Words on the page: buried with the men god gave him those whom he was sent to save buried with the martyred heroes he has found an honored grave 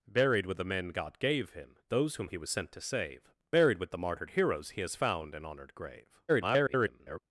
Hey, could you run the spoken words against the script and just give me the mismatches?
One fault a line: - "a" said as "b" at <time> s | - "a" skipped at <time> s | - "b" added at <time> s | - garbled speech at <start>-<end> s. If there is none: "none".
- garbled speech at 6.3-7.2 s